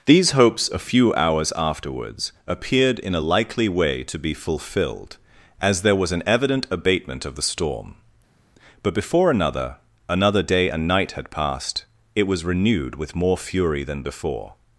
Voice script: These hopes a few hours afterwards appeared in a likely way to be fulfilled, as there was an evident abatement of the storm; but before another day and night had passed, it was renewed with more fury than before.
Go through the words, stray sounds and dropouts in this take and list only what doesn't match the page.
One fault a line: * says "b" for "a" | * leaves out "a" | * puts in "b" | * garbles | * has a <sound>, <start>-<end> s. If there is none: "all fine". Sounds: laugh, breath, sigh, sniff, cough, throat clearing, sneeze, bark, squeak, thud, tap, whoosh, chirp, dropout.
* puts in "another"